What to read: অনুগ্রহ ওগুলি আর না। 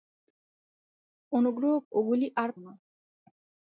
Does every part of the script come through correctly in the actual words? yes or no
yes